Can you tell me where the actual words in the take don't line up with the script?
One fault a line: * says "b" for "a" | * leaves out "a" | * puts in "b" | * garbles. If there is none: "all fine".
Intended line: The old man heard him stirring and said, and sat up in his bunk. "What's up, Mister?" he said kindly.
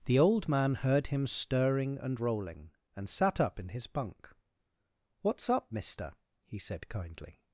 * says "rolling" for "said"